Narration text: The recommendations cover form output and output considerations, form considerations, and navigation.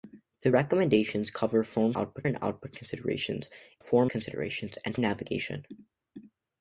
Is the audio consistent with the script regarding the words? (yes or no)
yes